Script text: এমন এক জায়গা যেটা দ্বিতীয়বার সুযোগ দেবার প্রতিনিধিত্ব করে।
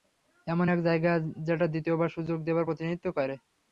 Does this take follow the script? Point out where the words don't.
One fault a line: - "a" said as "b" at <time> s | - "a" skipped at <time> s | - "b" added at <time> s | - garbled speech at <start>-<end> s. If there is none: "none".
none